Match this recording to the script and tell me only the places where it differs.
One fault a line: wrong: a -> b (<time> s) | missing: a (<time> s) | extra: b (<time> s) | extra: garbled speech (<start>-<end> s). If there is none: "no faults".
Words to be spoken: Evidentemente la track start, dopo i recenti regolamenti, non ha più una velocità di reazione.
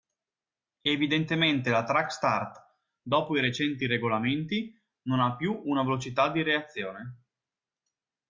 no faults